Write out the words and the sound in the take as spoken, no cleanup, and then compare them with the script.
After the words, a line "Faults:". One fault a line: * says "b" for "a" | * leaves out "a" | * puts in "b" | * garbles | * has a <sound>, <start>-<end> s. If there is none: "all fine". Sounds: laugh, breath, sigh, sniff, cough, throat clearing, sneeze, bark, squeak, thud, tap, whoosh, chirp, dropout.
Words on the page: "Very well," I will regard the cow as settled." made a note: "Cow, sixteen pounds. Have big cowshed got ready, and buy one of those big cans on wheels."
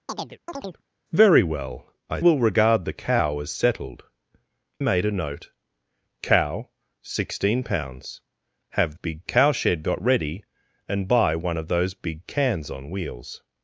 "Very well," I will regard the cow as settled." made a note: "Cow, sixteen pounds. Have big cowshed got ready, and buy one of those big cans on wheels."
Faults:
* has a chirp, 0.1-0.8 s